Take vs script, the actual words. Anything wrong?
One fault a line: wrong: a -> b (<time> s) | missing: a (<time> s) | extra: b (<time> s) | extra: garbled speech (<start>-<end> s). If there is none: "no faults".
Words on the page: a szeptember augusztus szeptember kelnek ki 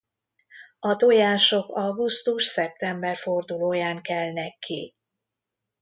wrong: szeptember -> tojások (1.0 s)
extra: fordulóján (3.2 s)